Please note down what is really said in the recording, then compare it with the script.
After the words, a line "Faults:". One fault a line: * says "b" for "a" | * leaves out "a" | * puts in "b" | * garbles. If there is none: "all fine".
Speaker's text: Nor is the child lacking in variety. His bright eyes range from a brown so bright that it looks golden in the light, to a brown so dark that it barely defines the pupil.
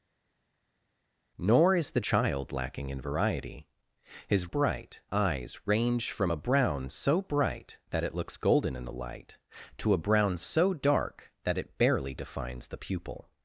Nor is the child lacking in variety. His bright eyes range from a brown so bright that it looks golden in the light, to a brown so dark that it barely defines the pupil.
Faults:
all fine